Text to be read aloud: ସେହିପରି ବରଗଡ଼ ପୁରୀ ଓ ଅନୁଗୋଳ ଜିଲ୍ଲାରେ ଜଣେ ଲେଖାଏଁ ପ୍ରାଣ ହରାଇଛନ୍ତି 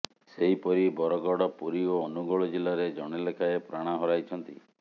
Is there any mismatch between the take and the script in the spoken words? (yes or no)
no